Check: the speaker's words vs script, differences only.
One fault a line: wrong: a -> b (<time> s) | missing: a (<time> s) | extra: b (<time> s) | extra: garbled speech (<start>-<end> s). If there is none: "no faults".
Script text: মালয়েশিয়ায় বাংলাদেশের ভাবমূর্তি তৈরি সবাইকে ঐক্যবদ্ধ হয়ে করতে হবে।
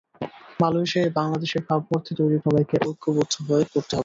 no faults